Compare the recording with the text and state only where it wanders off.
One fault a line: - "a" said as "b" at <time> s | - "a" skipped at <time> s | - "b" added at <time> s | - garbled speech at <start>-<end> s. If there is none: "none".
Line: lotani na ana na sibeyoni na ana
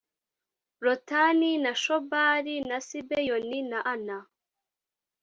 - "ana" said as "shobali" at 1.8 s